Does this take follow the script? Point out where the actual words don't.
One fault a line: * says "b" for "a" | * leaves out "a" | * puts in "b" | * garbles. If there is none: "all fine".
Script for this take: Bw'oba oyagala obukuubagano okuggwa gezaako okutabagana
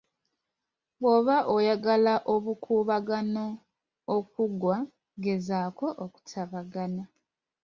all fine